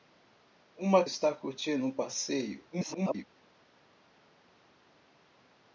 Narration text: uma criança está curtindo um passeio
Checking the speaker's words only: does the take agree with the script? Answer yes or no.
no